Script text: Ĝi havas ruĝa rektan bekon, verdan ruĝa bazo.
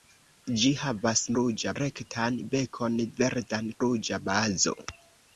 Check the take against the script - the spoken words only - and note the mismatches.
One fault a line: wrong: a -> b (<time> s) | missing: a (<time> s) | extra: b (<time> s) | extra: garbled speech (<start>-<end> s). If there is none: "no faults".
no faults